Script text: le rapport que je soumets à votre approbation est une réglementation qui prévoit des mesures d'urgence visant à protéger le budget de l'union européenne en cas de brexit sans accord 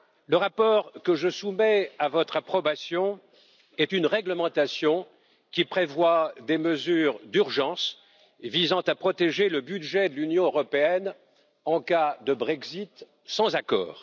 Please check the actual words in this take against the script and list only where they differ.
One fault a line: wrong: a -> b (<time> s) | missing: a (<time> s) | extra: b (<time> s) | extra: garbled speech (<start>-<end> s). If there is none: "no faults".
no faults